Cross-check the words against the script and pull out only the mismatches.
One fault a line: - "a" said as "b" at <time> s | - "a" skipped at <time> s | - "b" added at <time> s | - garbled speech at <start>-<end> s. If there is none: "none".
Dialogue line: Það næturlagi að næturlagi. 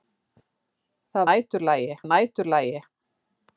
none